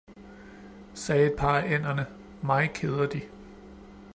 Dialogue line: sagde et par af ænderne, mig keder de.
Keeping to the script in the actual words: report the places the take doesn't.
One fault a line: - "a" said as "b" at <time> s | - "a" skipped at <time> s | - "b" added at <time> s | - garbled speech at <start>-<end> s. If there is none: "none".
none